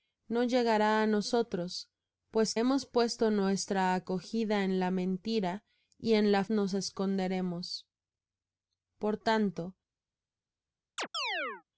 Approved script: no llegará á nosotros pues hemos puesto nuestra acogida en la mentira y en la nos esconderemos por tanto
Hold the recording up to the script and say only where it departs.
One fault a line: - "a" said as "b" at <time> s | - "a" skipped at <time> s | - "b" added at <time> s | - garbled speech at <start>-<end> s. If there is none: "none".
none